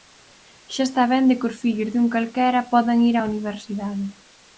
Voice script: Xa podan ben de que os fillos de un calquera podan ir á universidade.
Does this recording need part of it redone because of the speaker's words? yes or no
yes